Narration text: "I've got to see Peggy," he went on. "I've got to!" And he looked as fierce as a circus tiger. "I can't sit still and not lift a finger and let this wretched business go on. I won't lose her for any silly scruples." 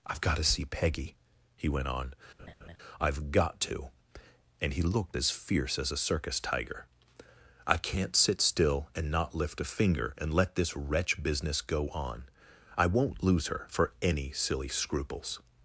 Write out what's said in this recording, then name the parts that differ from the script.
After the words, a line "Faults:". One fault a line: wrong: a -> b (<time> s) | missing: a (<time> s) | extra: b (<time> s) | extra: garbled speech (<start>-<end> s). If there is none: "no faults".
"I've got to see Peggy," he went on. "I've got to!" And he looked as fierce as a circus tiger. "I can't sit still and not lift a finger and let this wretch business go on. I won't lose her for any silly scruples."
Faults:
wrong: wretched -> wretch (10.8 s)